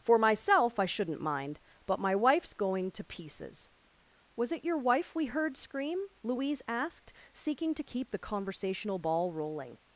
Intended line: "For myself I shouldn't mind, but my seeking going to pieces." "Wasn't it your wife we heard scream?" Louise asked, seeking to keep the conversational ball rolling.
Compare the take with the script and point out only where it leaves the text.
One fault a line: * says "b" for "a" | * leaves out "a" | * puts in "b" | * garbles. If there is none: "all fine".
* says "wife's" for "seeking"
* says "Was" for "Wasn't"